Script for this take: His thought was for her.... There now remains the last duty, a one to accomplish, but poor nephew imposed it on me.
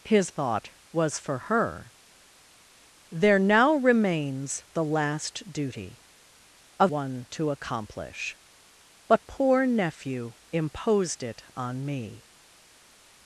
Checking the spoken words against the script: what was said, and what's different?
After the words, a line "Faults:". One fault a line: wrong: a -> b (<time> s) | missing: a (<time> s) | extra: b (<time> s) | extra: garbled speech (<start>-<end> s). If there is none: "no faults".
His thought was for her.... There now remains the last duty, a one to accomplish, but poor nephew imposed it on me.
Faults:
no faults